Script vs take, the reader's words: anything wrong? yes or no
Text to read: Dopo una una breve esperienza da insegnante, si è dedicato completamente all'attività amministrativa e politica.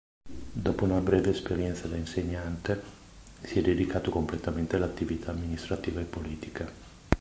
yes